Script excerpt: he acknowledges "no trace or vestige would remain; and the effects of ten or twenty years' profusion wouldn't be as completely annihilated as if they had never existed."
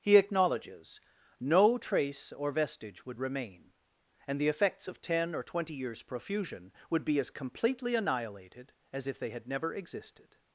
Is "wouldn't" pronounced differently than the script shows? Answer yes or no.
yes